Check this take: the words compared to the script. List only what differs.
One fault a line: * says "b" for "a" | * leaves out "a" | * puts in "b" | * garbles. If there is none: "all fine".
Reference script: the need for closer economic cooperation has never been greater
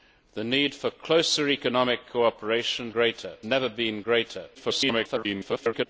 * says "greater" for "has"
* garbles